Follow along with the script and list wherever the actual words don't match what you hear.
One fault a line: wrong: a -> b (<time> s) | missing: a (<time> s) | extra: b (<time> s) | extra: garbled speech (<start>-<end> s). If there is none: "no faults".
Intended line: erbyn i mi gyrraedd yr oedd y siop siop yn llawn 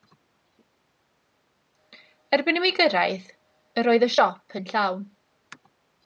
missing: siop (4.6 s)